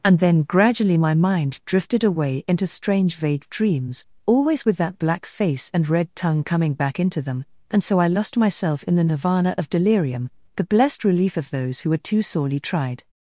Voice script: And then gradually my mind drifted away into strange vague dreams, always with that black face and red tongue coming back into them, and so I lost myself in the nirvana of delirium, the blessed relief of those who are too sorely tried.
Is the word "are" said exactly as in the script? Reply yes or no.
no